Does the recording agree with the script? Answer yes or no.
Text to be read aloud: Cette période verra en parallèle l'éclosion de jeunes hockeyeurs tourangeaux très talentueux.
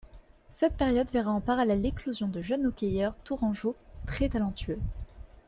yes